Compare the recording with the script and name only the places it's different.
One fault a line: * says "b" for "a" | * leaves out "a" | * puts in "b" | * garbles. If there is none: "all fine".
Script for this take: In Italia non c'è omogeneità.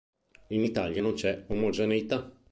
all fine